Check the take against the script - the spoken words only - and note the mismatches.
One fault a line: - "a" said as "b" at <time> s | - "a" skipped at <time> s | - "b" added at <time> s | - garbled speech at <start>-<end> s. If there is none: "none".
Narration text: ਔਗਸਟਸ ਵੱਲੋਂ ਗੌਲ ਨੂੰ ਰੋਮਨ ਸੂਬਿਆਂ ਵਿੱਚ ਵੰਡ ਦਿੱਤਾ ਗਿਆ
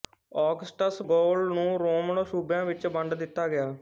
- "ਵੱਲੋਂ" skipped at 1.0 s